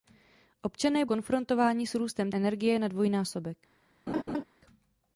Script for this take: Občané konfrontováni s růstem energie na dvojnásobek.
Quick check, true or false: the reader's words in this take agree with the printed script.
true